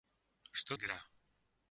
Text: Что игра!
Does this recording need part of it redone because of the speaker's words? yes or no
no